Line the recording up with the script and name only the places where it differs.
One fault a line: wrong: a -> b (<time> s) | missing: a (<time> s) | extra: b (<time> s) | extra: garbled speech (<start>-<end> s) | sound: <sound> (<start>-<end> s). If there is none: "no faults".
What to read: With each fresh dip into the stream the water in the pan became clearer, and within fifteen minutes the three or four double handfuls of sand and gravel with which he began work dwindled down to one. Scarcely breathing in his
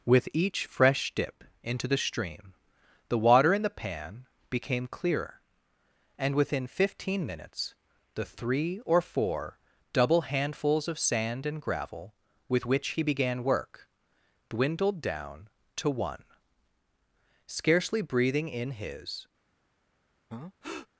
sound: breath (20.3-20.9 s)